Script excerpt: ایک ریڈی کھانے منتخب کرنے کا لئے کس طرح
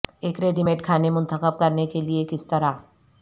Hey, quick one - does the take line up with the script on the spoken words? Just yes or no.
no